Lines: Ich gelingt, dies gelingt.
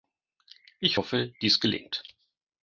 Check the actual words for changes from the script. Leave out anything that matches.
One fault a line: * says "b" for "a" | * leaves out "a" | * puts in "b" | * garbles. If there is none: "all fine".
* says "hoffe" for "gelingt"